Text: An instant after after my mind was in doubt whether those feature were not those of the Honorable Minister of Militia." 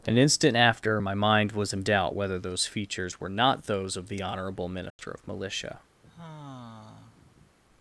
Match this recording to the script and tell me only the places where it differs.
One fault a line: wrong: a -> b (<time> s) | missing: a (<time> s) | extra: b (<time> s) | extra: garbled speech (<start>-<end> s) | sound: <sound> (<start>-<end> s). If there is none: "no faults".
missing: after (1.0 s)
wrong: feature -> features (2.7 s)
sound: dropout (4.9-5.0 s)
sound: sigh (6.0-7.6 s)